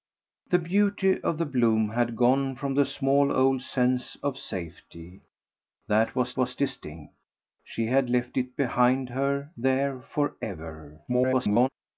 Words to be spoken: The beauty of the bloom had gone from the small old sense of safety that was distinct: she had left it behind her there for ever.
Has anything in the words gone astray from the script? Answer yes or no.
yes